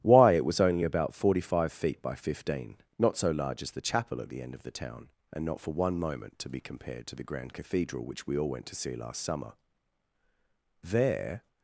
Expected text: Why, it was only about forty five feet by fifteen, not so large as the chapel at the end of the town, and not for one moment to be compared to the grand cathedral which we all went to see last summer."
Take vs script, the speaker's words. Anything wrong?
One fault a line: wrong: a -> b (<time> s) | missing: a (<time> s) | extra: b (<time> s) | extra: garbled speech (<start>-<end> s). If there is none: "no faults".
extra: There (10.8 s)